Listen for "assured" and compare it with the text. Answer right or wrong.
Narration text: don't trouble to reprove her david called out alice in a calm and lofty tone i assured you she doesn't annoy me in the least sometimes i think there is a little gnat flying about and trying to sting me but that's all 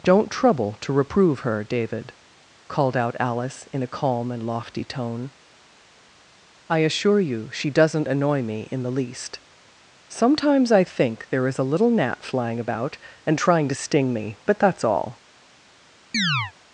wrong